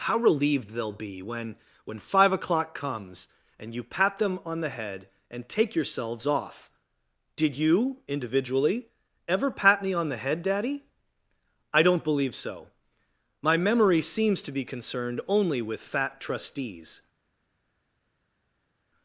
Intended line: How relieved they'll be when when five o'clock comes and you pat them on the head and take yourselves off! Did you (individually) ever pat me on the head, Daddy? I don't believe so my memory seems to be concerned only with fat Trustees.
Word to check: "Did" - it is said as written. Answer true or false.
true